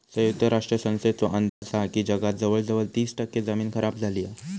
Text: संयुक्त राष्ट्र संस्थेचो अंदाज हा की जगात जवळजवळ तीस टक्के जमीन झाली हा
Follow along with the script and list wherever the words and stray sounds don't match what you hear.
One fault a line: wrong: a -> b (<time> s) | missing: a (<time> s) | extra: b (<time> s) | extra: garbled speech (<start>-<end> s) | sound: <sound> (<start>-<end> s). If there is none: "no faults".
sound: dropout (1.5-1.6 s)
extra: खराब (3.7 s)